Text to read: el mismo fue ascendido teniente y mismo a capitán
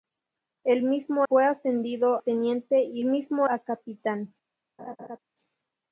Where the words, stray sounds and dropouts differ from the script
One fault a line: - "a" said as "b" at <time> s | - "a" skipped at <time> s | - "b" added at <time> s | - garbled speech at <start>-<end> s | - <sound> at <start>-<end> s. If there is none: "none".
- laugh at 4.8-5.2 s